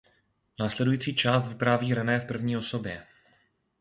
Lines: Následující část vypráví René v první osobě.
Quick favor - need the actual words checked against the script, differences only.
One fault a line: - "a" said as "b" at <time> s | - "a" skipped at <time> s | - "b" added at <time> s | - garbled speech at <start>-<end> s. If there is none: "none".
none